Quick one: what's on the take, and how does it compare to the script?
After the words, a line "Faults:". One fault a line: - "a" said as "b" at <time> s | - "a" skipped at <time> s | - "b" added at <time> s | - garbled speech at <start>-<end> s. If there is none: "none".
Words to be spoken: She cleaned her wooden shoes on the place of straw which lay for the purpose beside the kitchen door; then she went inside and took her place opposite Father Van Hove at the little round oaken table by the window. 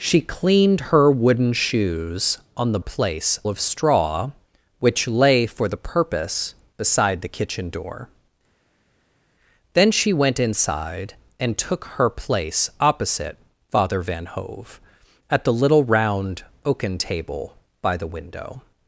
She cleaned her wooden shoes on the place of straw which lay for the purpose beside the kitchen door; then she went inside and took her place opposite Father Van Hove at the little round oaken table by the window.
Faults:
none